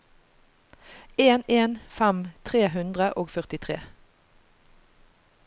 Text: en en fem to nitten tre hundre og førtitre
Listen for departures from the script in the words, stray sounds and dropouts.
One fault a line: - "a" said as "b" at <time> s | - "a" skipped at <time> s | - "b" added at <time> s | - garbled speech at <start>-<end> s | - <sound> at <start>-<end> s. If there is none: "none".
- "to nitten" skipped at 2.2 s